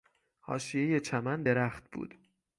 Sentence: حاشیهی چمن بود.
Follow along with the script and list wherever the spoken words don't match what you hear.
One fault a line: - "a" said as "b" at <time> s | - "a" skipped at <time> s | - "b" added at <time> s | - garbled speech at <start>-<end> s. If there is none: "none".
- "درخت" added at 1.4 s